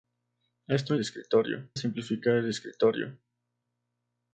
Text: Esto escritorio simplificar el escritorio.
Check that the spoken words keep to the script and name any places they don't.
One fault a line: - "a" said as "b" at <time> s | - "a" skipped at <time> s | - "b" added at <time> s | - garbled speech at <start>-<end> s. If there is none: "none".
none